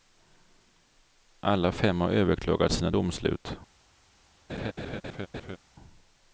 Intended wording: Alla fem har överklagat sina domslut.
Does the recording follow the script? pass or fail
pass